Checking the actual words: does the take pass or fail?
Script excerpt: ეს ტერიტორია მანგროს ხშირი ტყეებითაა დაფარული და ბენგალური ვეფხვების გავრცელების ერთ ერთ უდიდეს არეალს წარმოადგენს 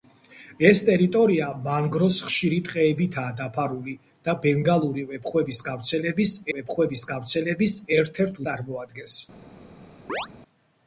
fail